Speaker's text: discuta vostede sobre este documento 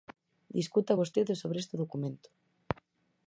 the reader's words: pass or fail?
pass